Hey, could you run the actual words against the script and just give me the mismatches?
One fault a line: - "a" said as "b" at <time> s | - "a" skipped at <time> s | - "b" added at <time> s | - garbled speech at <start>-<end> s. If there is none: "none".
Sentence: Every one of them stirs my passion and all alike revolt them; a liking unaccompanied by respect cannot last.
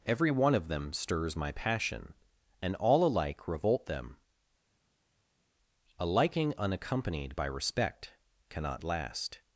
none